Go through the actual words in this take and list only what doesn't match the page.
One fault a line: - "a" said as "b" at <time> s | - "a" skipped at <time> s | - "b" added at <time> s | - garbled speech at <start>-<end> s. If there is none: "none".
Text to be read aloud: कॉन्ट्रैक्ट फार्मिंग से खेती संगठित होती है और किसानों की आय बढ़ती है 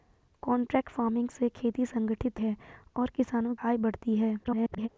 - "होती" skipped at 2.4 s
- "की" skipped at 3.5 s
- garbled speech at 4.4-4.9 s